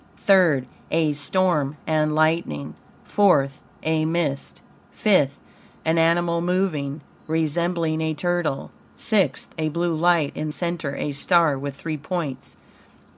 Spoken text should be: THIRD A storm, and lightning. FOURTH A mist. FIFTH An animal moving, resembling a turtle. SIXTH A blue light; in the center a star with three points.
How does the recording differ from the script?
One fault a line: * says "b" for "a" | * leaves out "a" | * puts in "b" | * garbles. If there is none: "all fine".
* leaves out "the"